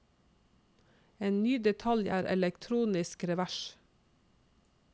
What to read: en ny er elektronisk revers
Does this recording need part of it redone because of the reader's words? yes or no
yes